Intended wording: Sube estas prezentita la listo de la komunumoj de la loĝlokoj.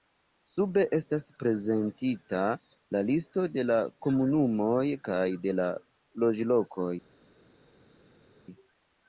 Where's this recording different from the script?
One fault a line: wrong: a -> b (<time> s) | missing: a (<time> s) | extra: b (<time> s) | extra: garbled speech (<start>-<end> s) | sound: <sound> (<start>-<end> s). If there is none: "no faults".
extra: kaj (5.1 s)